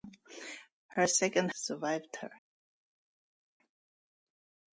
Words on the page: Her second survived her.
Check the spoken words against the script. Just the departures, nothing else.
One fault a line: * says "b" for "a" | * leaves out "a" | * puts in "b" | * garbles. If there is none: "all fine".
all fine